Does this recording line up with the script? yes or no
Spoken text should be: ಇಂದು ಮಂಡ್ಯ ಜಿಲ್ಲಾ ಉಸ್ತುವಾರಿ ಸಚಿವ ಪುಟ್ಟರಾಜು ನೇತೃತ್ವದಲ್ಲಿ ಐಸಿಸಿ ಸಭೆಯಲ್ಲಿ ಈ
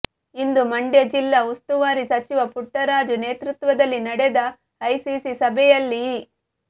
no